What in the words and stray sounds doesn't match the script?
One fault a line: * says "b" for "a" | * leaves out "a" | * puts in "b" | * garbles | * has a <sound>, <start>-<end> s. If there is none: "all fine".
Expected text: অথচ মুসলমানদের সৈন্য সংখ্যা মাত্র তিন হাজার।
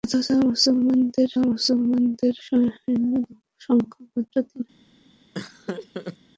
* puts in "মুসলমানদের"
* has a laugh, 5.3-6.2 s